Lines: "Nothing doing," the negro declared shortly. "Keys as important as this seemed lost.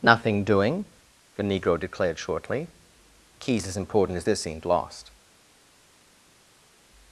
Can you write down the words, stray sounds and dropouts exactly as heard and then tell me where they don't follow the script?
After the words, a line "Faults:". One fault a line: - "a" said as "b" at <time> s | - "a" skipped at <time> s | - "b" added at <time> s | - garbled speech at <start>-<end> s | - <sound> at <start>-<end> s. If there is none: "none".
"Nothing doing," the negro declared shortly. "Keys as important as this seemed lost.
Faults:
none